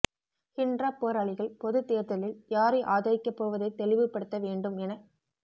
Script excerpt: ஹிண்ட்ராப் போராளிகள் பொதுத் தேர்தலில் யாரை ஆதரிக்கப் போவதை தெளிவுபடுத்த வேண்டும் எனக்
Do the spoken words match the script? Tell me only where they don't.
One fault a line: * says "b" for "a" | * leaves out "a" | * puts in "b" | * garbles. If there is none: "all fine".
all fine